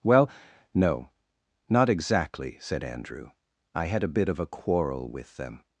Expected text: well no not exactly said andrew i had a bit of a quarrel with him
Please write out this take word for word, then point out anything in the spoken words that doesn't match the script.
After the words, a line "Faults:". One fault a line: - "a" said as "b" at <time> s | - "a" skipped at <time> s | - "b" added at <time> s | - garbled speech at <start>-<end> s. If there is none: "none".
well no not exactly said andrew i had a bit of a quarrel with them
Faults:
- "him" said as "them" at 5.4 s